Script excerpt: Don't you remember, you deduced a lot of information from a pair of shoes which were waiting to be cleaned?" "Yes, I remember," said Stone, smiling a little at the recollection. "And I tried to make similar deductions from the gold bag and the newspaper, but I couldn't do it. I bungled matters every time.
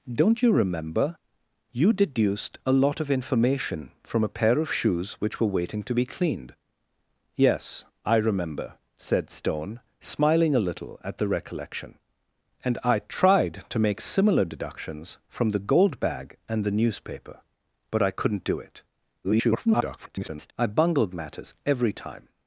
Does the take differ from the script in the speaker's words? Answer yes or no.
yes